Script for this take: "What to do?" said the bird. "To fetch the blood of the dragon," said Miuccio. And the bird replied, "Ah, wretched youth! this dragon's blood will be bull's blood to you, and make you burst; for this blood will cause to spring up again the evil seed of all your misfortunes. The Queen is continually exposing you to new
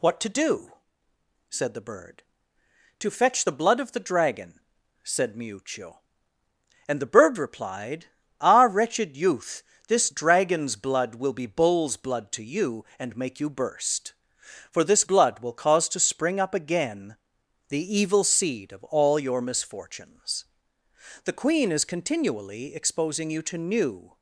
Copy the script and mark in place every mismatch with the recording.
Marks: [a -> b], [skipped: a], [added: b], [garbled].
"What to do?" said the bird. "To fetch the blood of the dragon," said Miuccio. And the bird replied, "Ah, wretched youth! this dragon's blood will be bull's blood to you, and make you burst; for this blood will cause to spring up again the evil seed of all your misfortunes. The Queen is continually exposing you to new